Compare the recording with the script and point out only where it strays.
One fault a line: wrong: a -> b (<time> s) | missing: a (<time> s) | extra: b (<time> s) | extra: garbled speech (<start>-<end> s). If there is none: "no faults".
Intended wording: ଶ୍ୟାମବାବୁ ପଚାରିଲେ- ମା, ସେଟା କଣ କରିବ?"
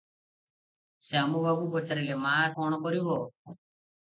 missing: ସେଟା (2.3 s)